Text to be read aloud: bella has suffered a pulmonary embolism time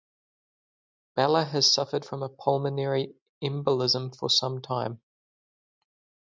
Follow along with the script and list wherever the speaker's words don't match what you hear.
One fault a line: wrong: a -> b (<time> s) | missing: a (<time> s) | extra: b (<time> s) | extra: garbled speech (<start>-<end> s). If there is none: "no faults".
extra: from (2.0 s)
extra: for some (4.2 s)